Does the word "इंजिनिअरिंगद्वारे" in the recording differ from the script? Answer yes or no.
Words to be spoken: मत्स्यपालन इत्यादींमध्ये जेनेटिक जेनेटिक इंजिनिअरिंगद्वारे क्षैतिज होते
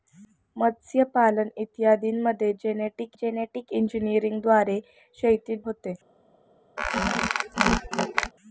no